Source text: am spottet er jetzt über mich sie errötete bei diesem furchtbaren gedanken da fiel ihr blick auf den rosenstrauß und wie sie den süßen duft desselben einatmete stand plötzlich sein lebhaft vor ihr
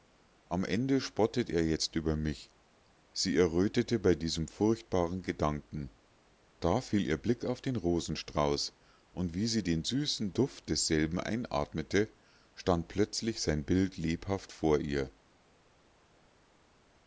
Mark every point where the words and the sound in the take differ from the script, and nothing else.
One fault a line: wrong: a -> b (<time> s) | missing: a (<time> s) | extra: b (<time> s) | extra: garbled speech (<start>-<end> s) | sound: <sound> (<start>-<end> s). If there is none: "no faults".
extra: ende (0.7 s)
extra: bild (13.6 s)